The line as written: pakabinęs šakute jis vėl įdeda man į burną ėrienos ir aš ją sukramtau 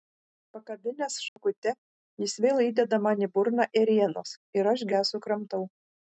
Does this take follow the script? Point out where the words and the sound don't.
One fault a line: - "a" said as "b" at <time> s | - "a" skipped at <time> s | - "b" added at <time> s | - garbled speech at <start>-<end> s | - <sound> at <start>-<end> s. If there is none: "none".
- dropout at 1.3-1.4 s